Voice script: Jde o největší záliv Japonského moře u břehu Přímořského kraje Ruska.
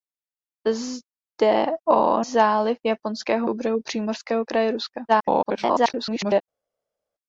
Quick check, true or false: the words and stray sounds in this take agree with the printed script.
false